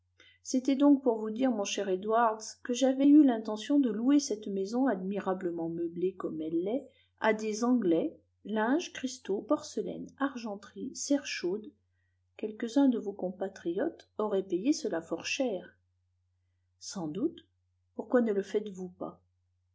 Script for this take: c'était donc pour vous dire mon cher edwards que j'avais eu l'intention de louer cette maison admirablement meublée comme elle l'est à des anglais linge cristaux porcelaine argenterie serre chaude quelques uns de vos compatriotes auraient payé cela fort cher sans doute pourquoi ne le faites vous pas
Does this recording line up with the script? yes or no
yes